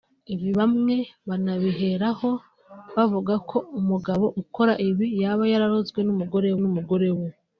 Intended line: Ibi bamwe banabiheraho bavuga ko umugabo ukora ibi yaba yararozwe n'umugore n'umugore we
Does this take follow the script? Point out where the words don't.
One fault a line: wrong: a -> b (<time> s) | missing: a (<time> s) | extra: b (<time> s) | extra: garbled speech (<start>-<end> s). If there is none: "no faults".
no faults